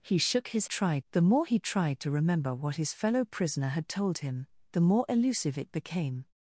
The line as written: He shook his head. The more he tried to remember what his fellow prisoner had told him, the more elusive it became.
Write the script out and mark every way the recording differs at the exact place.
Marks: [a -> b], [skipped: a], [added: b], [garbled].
He shook his [head. -> tried] The more he tried to remember what his fellow prisoner had told him, the more elusive it became.